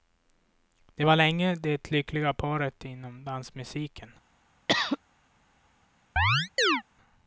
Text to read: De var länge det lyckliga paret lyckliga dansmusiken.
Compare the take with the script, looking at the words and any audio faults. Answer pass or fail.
fail